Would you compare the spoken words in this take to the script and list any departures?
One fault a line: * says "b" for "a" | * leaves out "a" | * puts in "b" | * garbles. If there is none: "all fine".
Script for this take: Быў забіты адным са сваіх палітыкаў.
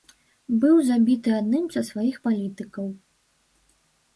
all fine